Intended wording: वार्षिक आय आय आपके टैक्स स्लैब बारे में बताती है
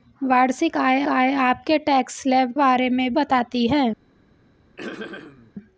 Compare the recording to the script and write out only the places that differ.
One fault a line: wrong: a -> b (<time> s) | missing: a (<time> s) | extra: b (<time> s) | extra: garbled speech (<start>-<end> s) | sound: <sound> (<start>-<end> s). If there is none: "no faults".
sound: throat clearing (4.8-5.5 s)